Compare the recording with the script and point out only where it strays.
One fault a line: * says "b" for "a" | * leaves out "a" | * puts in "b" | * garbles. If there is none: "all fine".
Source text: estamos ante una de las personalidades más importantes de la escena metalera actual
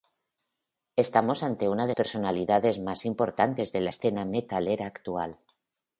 * leaves out "las"